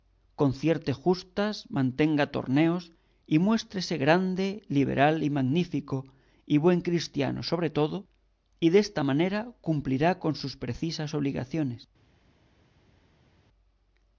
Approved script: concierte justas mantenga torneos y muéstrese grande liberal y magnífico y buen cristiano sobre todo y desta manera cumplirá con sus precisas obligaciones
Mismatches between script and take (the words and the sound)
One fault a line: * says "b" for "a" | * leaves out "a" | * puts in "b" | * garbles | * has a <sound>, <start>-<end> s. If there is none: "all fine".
all fine